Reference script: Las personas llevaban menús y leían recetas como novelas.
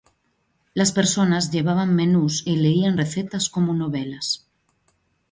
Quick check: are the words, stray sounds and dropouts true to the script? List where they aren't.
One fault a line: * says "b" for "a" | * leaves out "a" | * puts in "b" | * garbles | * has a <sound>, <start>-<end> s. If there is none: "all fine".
all fine